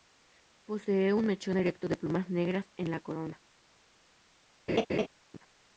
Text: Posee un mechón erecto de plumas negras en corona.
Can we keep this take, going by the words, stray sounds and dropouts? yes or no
no